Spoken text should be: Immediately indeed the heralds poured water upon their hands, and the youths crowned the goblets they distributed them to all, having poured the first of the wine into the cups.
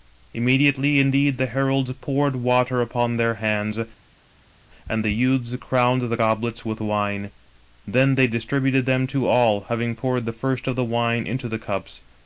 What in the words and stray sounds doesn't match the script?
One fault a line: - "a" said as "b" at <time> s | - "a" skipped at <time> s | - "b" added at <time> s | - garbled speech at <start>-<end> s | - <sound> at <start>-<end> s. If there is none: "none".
- "with wine then" added at 6.7 s